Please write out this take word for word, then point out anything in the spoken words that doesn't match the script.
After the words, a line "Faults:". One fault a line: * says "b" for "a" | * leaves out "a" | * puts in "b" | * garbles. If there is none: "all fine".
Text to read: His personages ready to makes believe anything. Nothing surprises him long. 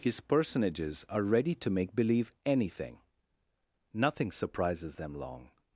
His personages are ready to make believe anything. Nothing surprises them long.
Faults:
* puts in "are"
* says "make" for "makes"
* says "them" for "him"